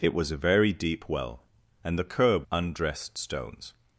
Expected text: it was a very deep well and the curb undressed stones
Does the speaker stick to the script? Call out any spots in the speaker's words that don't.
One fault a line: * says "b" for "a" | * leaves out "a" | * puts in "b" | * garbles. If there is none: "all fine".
all fine